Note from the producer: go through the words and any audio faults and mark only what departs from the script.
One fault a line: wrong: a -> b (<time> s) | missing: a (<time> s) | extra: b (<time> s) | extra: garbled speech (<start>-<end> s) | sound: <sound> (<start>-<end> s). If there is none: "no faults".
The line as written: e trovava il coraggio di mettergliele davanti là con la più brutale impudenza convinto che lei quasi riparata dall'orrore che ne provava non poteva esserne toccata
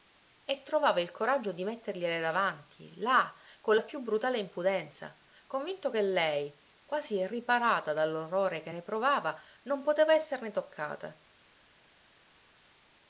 no faults